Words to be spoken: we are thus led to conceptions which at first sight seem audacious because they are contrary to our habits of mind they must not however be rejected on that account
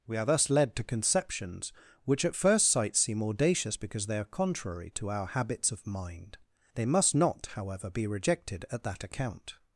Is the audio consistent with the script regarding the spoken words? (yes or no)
no